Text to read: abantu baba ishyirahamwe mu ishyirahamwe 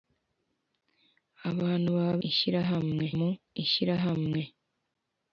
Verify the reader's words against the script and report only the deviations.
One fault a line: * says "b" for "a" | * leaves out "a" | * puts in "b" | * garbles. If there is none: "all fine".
all fine